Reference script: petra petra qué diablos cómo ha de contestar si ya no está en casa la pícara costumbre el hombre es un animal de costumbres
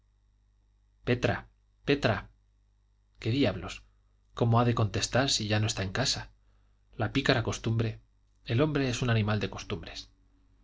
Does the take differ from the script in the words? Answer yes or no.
no